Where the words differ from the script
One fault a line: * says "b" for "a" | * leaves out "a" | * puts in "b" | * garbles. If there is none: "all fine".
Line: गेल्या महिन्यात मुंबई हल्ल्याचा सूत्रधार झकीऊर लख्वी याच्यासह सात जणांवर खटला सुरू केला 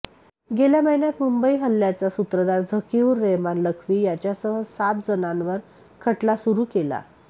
* puts in "रेहमान"